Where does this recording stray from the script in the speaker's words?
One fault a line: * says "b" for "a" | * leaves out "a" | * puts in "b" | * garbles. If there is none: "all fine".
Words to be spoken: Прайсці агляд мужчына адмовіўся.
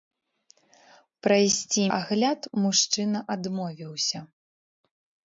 all fine